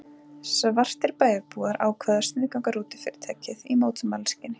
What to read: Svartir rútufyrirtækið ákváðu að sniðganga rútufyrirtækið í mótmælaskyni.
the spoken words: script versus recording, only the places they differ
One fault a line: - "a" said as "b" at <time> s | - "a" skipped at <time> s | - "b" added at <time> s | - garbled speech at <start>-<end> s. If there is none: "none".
- "rútufyrirtækið" said as "bæjarbúar" at 1.2 s